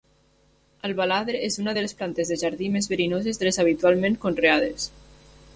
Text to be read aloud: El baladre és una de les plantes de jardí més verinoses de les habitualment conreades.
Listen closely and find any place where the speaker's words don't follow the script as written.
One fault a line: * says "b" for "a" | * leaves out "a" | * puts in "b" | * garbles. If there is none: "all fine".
all fine